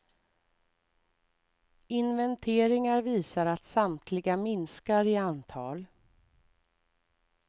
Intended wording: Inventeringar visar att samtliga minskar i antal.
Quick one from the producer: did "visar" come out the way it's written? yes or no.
yes